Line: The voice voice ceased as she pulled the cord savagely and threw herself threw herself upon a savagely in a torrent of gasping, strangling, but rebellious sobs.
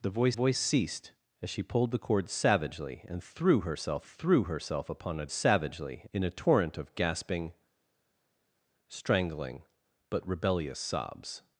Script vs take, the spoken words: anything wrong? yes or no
no